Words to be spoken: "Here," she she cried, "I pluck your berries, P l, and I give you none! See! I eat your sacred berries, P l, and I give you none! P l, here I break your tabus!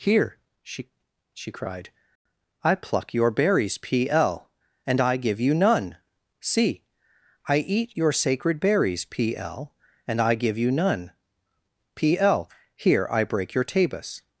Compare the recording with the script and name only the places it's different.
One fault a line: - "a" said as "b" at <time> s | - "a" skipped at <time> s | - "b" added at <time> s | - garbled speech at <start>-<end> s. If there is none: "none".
none